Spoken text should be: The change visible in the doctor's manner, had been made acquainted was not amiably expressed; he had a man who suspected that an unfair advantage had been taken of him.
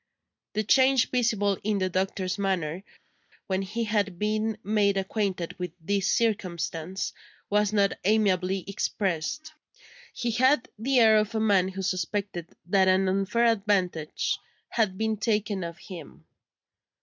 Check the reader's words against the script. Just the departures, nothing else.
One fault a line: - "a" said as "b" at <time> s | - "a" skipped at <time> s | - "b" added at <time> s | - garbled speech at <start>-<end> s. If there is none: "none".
- "when he" added at 3.5 s
- "with this circumstance" added at 5.6 s
- "the air of" added at 10.8 s